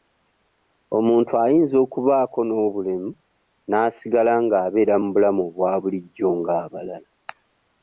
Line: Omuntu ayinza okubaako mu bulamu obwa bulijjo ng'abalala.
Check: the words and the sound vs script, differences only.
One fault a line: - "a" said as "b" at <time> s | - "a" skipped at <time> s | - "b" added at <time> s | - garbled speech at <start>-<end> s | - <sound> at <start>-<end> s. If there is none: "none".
- "n'obulemu n'asigala ng'abeera" added at 2.5 s